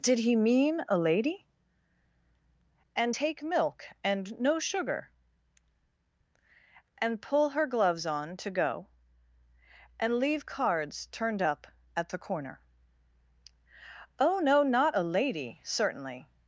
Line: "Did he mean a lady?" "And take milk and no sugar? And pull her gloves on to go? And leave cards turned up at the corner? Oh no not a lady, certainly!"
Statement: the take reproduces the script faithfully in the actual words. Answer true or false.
true